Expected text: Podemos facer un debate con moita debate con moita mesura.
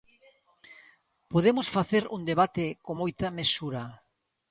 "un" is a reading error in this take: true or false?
false